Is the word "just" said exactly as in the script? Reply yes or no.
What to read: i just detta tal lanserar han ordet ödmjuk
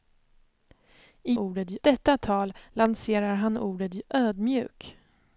no